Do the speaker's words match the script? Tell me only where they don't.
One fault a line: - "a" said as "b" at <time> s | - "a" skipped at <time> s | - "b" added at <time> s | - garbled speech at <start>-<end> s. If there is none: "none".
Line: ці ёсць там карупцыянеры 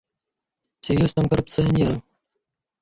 none